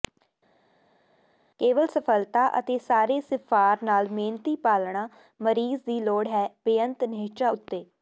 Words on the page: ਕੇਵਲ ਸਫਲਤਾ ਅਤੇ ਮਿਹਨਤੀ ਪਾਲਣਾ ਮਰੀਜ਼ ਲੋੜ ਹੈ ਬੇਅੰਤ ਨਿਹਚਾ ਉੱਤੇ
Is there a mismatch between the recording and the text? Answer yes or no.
yes